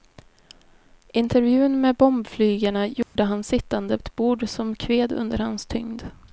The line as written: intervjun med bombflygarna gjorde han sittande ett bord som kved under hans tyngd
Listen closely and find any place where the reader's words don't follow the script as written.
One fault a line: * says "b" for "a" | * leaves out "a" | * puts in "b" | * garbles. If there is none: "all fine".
all fine